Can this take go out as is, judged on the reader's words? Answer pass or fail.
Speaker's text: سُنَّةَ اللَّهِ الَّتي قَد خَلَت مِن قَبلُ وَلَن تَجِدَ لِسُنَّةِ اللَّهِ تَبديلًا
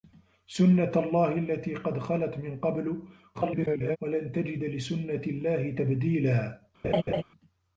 fail